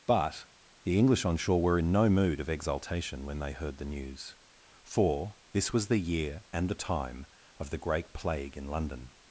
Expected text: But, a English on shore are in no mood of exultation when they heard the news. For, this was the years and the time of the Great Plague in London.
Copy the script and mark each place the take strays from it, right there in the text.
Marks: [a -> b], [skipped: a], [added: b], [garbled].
But, [a -> the] English on shore [are -> were] in no mood of exultation when they heard the news. For, this was the [years -> year] and the time of the Great Plague in London.